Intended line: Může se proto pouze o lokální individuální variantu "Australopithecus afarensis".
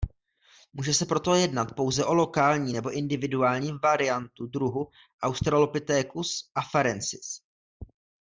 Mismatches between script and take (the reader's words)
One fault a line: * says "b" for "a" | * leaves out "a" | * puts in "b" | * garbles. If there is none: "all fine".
* puts in "jednat"
* puts in "nebo"
* puts in "druhu"